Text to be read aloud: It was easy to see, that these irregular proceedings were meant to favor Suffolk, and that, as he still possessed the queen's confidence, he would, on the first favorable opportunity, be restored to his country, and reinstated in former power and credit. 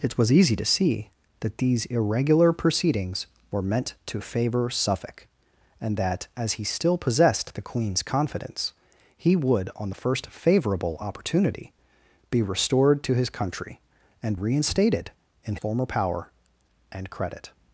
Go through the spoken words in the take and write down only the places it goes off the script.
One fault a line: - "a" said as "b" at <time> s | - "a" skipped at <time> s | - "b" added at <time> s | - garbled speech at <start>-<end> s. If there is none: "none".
none